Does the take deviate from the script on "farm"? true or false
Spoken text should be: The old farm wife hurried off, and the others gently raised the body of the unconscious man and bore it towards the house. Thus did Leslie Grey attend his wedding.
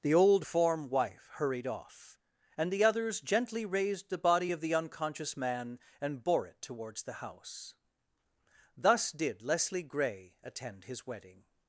true